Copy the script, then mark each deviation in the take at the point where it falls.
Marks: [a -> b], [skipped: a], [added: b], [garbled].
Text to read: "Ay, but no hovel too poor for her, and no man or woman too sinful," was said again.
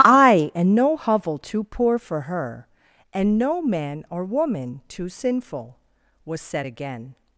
"Ay, [but -> and] no hovel too poor for her, and no man or woman too sinful," was said again.